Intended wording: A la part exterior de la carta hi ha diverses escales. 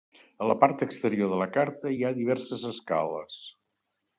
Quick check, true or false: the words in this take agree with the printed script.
true